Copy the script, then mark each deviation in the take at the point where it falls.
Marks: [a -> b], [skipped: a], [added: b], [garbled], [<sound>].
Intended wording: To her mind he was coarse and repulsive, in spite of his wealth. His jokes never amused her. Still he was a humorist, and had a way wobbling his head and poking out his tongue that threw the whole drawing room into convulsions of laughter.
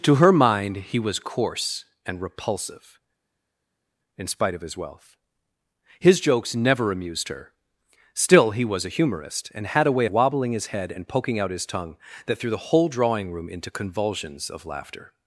To her mind he was coarse and repulsive, in spite of his wealth. His jokes never amused her. Still he was a humorist, and had a way wobbling his head and poking out his tongue that threw the whole drawing room into convulsions of laughter.